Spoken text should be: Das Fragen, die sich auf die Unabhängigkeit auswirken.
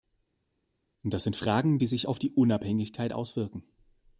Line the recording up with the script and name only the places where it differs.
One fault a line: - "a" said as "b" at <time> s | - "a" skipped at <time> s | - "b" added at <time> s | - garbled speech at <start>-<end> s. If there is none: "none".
- "sind" added at 1.2 s